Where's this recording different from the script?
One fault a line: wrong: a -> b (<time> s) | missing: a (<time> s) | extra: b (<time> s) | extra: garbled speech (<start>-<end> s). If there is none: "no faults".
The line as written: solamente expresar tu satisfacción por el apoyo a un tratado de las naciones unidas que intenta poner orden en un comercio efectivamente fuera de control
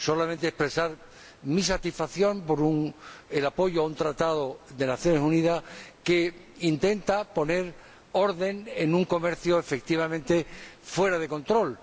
wrong: tu -> mi (1.4 s)